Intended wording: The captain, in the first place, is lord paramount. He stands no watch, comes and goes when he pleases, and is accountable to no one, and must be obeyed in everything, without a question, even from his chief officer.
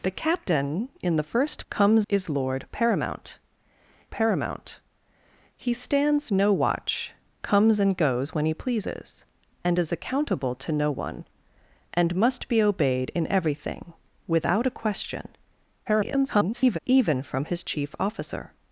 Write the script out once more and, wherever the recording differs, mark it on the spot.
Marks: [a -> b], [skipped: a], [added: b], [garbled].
The captain, in the first [place, -> comes] is lord paramount. [added: paramount] He stands no watch, comes and goes when he pleases, and is accountable to no one, and must be obeyed in everything, without a question, [garbled] even from his chief officer.